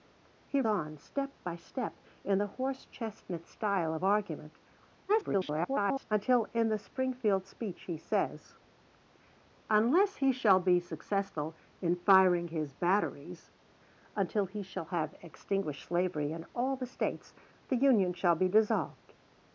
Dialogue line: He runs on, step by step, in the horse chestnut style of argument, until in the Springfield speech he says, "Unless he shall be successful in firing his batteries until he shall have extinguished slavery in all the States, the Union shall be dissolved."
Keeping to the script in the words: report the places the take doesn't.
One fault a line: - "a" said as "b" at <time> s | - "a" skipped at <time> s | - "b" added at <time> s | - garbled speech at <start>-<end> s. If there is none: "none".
- "runs" skipped at 0.6 s
- garbled speech at 5.1-6.1 s